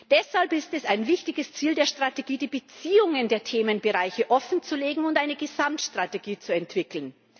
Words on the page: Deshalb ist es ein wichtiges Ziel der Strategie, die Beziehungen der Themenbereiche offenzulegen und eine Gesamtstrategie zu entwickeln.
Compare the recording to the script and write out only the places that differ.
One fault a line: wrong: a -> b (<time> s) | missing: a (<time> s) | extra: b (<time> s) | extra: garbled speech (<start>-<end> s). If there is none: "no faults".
no faults